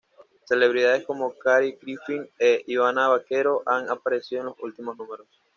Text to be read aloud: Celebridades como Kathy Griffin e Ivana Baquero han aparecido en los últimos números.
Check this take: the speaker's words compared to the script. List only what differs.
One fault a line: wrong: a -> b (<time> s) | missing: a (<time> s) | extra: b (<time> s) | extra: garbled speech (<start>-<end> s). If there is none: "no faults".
no faults